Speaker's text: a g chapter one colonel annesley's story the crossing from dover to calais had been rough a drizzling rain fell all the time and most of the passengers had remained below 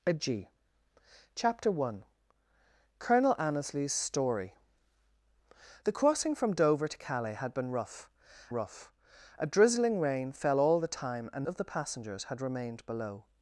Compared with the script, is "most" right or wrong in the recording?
wrong